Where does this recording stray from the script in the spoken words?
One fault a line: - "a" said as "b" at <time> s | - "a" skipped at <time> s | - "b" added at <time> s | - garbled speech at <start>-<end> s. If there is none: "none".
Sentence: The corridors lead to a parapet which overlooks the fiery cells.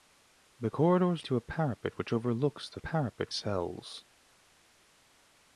- "lead" skipped at 1.2 s
- "fiery" said as "parapet" at 2.8 s